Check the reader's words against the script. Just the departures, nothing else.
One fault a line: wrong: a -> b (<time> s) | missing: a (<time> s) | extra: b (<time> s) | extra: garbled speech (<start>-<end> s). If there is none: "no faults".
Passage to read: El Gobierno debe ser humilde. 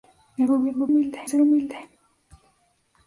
wrong: debe -> humilde (0.9 s)